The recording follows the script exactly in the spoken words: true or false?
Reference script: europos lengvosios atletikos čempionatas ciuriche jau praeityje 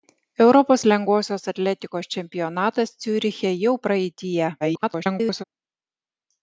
false